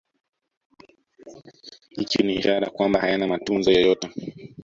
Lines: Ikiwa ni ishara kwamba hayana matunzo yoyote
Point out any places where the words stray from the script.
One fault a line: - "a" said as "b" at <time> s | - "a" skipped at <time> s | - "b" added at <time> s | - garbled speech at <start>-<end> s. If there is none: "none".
none